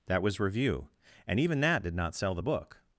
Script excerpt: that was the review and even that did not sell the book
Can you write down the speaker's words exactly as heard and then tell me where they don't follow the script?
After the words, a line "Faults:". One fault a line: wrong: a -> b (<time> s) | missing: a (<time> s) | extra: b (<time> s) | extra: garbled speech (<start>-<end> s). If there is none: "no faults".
that was review and even that did not sell the book
Faults:
missing: the (0.4 s)